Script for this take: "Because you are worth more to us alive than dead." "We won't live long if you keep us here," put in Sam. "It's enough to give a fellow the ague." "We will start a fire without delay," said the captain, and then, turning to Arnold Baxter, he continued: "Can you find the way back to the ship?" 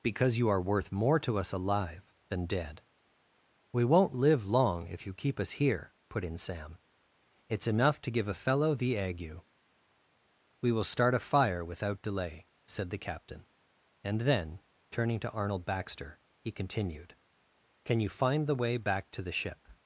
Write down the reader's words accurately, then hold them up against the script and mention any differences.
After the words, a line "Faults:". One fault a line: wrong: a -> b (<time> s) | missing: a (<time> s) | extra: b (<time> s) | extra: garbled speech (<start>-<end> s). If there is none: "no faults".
"Because you are worth more to us alive than dead." "We won't live long if you keep us here," put in Sam. "It's enough to give a fellow the ague." "We will start a fire without delay," said the captain, and then, turning to Arnold Baxter, he continued: "Can you find the way back to the ship?"
Faults:
no faults